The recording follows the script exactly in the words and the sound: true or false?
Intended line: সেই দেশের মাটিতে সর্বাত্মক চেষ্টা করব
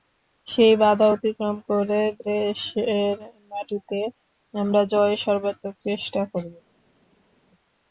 false